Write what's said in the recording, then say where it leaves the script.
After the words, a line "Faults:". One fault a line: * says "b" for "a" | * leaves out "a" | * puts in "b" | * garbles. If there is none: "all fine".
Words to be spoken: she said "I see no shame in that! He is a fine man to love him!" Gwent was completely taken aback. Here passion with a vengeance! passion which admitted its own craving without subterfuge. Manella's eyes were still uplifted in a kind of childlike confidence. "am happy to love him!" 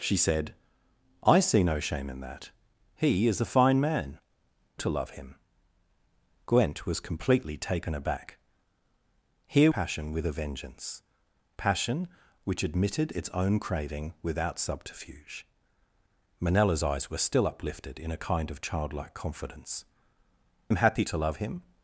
she said "I see no shame in that! He is a fine man to love him!" Gwent was completely taken aback. Here passion with a vengeance! passion which admitted its own craving without subterfuge. Manella's eyes were still uplifted in a kind of childlike confidence. "am happy to love him!"
Faults:
all fine